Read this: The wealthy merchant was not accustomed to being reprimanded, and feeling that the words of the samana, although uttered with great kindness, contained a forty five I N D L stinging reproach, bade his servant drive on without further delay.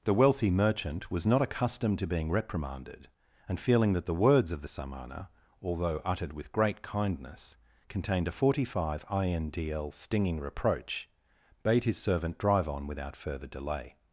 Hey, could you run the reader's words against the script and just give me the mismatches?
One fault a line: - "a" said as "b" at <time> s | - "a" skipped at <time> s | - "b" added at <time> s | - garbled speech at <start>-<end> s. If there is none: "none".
none